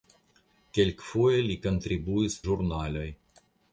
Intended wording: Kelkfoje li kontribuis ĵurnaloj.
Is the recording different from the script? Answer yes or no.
no